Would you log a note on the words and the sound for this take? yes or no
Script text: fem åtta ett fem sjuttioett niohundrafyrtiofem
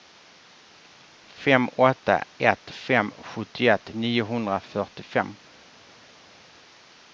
no